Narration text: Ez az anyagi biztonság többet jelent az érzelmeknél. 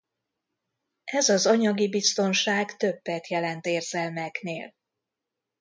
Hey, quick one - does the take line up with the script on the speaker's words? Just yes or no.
no